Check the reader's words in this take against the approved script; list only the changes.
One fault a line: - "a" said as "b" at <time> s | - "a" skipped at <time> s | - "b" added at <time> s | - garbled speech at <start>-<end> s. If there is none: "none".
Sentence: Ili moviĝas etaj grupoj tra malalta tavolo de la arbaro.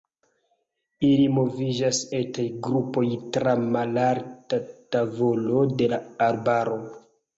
none